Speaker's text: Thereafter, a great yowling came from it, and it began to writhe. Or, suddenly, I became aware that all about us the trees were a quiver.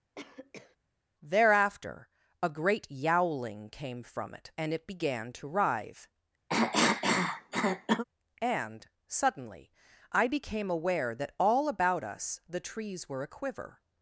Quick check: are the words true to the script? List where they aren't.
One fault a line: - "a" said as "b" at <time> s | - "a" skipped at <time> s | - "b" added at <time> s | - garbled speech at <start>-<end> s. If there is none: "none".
- "Or" said as "And" at 8.4 s